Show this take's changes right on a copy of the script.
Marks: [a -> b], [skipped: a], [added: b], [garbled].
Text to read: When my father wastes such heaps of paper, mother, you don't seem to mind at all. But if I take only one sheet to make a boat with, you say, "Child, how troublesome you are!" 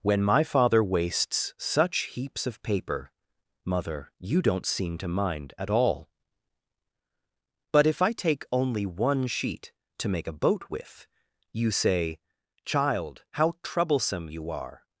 When my father wastes such heaps of paper, mother, you don't seem to mind at all. But if I take only one sheet to make a boat with, you say, "Child, how troublesome you are!"